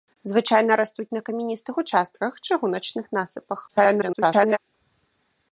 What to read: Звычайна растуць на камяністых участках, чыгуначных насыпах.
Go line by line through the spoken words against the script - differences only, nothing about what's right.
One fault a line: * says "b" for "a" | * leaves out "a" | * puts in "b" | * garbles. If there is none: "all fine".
* garbles